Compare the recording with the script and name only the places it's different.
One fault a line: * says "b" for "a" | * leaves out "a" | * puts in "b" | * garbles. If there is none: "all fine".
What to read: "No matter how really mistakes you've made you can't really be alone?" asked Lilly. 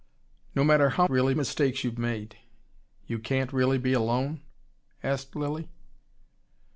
all fine